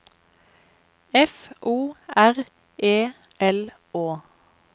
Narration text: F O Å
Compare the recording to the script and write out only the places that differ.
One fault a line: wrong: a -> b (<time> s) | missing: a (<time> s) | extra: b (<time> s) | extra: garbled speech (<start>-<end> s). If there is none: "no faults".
extra: R E L (2.1 s)